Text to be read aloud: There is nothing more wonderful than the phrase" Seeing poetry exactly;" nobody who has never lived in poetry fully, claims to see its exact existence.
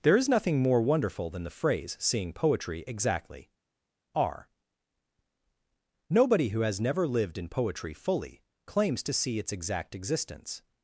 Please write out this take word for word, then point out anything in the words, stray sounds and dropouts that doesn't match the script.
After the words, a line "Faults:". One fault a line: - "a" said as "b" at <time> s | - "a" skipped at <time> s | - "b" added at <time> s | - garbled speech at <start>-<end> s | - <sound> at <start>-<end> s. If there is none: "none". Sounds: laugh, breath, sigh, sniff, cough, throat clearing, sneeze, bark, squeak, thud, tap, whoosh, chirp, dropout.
There is nothing more wonderful than the phrase" Seeing poetry exactly;" are nobody who has never lived in poetry fully, claims to see its exact existence.
Faults:
- "are" added at 4.1 s